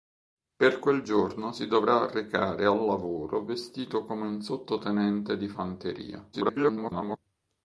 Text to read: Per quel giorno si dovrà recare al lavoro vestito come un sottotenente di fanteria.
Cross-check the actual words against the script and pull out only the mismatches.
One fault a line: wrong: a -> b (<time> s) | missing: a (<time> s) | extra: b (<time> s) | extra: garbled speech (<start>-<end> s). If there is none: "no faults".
extra: garbled speech (6.3-7.2 s)